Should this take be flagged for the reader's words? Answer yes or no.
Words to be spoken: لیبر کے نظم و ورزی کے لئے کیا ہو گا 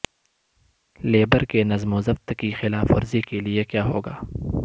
yes